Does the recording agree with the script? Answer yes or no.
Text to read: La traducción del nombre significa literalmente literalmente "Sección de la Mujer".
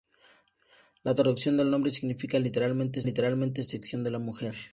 yes